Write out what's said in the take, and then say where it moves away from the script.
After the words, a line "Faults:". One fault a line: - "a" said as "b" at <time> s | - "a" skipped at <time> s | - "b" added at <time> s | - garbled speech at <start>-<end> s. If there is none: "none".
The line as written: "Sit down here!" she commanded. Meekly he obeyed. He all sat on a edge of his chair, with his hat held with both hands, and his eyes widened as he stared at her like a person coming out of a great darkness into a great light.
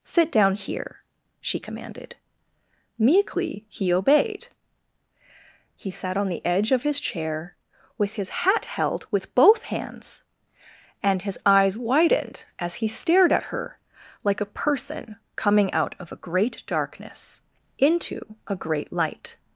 "Sit down here!" she commanded. Meekly he obeyed. He sat on the edge of his chair, with his hat held with both hands, and his eyes widened as he stared at her like a person coming out of a great darkness into a great light.
Faults:
- "all" skipped at 5.9 s
- "a" said as "the" at 6.3 s